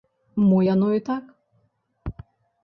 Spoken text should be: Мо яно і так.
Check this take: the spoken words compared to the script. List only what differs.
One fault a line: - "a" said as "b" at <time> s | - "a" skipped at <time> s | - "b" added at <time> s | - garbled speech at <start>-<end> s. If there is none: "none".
none